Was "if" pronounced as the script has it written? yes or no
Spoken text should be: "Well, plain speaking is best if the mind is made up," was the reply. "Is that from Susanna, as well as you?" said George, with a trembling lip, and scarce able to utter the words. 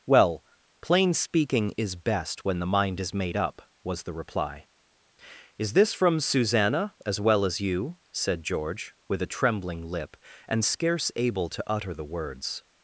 no